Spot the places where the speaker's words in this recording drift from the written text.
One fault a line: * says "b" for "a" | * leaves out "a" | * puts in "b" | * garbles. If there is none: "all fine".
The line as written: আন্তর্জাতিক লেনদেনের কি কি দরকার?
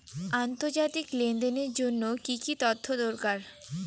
* puts in "জন্য"
* puts in "তথ্য"